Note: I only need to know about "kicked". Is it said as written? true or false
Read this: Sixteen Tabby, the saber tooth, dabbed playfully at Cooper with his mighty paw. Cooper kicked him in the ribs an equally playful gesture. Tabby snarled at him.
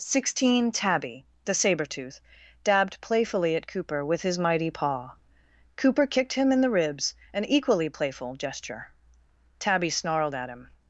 true